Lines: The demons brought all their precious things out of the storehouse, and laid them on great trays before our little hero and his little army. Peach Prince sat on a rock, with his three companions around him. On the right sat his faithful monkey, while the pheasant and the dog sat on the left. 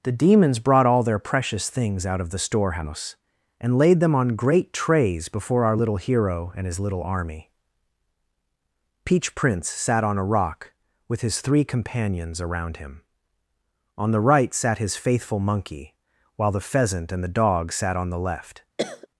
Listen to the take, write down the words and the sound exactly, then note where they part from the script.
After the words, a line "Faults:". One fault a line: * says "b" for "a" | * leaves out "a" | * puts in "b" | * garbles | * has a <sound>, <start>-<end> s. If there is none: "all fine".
The demons brought all their precious things out of the storehouse, and laid them on great trays before our little hero and his little army. Peach Prince sat on a rock, with his three companions around him. On the right sat his faithful monkey, while the pheasant and the dog sat on the left.
Faults:
* has a cough, 18.8-19.1 s